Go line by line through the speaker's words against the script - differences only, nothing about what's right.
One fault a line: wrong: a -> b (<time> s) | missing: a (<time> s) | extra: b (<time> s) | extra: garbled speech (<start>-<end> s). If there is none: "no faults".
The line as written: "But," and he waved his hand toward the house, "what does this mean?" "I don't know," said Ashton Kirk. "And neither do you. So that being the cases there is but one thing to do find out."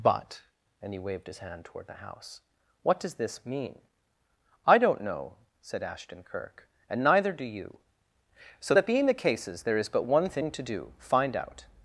no faults